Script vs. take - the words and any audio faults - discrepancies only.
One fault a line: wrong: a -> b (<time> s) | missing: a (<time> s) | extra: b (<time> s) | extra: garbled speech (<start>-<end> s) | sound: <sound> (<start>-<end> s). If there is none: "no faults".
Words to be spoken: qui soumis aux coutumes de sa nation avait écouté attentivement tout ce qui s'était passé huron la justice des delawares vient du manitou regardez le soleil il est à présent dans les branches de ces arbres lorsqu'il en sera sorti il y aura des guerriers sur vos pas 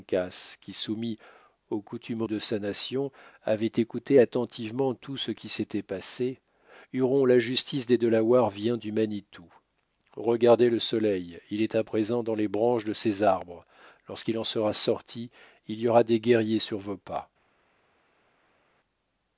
no faults